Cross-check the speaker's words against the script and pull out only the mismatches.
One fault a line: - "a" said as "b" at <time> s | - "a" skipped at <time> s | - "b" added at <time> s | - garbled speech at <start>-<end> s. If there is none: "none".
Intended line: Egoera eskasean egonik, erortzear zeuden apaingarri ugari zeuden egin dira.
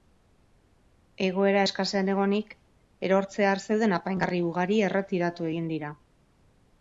- "zeuden" said as "erretiratu" at 4.9 s